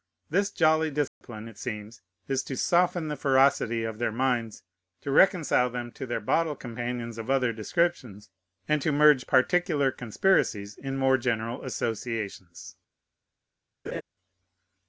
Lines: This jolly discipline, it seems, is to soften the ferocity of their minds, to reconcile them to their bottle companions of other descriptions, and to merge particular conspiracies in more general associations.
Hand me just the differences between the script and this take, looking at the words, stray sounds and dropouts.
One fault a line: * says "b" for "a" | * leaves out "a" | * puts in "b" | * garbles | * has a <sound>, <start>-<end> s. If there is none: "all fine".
* has a dropout, 1.1-1.2 s
* has a laugh, 13.9-14.0 s